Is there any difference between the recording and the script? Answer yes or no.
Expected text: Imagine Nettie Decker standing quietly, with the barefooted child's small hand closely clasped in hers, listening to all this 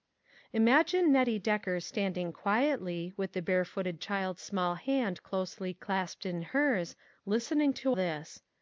yes